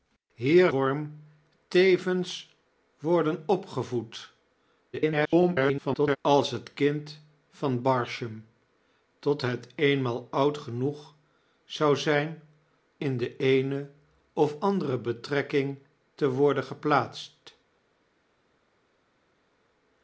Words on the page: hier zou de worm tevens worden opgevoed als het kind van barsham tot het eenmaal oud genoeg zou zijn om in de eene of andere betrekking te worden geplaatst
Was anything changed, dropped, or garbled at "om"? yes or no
yes